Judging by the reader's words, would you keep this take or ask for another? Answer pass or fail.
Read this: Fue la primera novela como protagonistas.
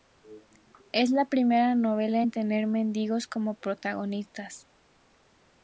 fail